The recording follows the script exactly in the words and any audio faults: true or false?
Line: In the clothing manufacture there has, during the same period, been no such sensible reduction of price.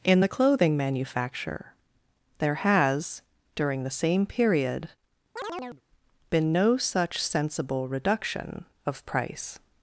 false